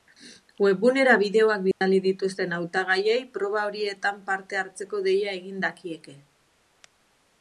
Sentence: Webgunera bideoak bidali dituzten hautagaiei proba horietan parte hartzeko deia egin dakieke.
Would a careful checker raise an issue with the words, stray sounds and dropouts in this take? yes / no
yes